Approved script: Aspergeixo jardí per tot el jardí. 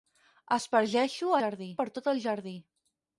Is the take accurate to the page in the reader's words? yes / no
yes